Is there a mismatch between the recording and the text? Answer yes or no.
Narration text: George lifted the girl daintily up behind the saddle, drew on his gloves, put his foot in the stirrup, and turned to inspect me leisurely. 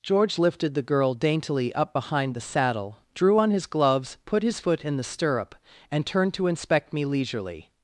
no